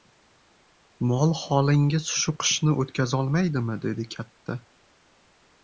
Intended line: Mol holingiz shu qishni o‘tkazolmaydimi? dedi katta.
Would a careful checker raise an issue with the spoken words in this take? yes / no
no